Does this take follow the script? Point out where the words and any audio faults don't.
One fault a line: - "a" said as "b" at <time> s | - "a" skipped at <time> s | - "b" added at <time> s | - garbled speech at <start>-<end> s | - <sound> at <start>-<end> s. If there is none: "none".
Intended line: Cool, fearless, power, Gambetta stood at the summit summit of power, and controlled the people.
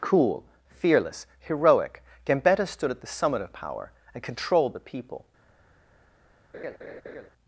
- "power" said as "heroic" at 1.4 s
- "summit" skipped at 3.4 s
- laugh at 6.5-7.3 s